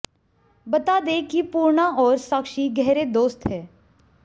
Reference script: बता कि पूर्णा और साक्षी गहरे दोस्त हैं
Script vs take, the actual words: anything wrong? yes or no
yes